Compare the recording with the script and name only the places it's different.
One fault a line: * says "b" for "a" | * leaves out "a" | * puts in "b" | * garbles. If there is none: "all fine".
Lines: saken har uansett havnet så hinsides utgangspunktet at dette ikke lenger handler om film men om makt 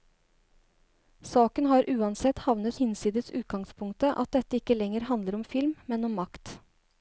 * leaves out "så"